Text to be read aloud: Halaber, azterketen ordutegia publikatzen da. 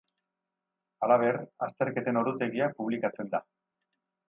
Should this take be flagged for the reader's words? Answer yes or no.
no